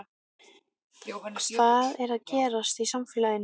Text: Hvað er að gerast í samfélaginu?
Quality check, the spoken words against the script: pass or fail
pass